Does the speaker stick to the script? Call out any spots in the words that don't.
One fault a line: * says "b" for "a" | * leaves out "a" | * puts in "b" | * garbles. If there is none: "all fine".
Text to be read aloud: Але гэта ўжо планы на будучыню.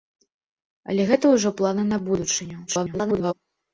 * garbles